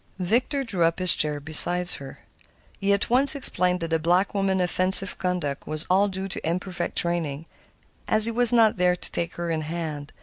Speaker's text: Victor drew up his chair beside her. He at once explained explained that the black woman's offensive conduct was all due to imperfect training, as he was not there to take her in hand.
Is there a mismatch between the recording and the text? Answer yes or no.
yes